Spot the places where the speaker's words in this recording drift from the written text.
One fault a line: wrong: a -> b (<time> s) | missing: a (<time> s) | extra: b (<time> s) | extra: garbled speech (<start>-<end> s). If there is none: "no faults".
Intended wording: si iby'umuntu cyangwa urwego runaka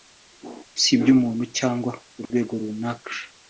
no faults